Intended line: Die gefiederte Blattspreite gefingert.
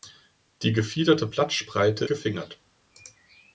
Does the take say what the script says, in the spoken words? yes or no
yes